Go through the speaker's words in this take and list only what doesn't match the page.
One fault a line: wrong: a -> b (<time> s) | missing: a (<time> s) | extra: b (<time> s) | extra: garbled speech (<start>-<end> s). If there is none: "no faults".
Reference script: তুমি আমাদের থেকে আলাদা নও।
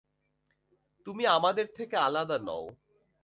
no faults